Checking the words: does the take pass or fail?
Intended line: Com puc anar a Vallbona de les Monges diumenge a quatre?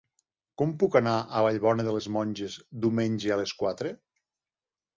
fail